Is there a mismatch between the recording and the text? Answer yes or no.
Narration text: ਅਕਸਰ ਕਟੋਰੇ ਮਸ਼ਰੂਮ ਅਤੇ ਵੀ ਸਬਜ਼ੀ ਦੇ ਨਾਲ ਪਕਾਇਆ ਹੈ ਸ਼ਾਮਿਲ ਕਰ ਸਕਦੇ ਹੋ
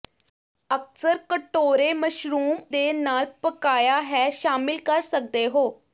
yes